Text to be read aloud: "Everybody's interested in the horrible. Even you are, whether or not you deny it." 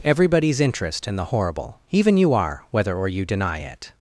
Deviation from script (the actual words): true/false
true